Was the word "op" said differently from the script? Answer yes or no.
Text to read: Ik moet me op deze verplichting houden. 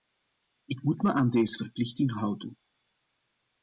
yes